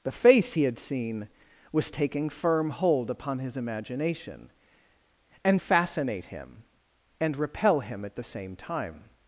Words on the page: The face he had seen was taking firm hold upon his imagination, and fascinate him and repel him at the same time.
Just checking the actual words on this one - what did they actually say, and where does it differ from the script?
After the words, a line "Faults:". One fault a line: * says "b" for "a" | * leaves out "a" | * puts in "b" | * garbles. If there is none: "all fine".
The face he had seen was taking firm hold upon his imagination, and fascinate him and repel him at the same time.
Faults:
all fine